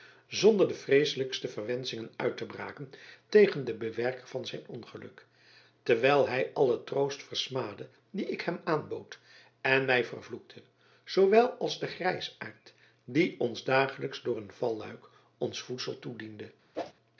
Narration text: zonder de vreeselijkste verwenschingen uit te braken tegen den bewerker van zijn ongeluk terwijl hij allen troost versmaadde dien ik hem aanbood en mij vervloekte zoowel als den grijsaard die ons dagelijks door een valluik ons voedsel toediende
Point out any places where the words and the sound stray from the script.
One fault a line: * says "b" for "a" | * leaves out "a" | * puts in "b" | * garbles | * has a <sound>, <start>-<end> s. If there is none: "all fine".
* has a whoosh, 16.7-16.9 s